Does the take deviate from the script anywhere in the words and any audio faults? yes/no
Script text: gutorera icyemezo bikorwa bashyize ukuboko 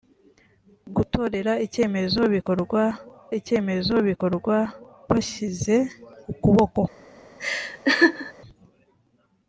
yes